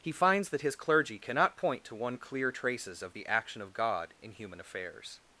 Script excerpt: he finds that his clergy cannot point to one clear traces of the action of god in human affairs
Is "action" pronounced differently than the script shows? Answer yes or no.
no